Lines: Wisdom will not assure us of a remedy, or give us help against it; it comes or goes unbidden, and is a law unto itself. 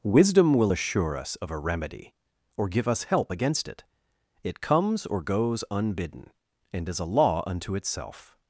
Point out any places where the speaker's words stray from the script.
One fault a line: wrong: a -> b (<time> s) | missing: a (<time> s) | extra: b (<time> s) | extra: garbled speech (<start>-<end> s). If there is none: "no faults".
missing: not (0.7 s)